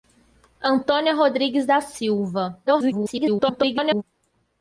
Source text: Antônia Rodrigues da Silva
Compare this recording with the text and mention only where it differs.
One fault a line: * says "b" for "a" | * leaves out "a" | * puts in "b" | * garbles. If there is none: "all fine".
* garbles